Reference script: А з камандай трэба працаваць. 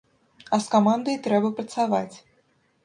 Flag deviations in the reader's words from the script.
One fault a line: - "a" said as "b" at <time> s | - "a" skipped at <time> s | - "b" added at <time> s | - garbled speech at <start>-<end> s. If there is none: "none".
none